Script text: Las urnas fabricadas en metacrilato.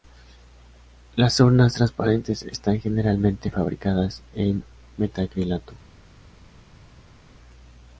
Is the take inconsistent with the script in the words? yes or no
yes